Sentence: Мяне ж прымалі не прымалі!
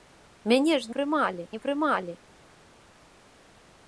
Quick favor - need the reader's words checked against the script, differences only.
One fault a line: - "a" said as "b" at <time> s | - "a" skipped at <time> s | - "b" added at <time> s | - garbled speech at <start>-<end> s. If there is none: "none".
none